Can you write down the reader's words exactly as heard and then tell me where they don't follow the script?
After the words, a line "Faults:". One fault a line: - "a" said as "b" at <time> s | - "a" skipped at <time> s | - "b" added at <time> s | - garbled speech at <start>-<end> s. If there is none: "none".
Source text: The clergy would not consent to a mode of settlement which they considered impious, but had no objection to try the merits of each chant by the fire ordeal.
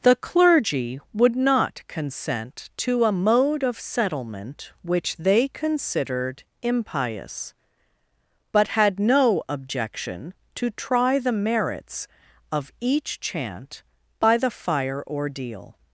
The clergy would not consent to a mode of settlement which they considered impious, but had no objection to try the merits of each chant by the fire ordeal.
Faults:
none